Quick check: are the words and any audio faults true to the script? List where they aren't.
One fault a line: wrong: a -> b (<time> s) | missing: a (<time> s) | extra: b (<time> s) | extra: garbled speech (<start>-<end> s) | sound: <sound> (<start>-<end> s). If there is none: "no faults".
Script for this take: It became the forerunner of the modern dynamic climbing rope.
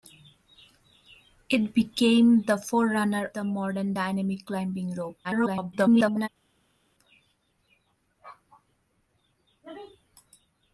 missing: of (3.3 s)
extra: garbled speech (5.2-6.3 s)